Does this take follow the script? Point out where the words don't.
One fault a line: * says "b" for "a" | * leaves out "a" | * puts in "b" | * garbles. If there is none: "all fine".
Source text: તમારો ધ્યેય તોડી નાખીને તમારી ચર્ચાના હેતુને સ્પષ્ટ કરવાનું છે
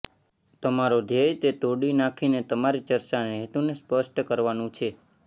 * puts in "તે"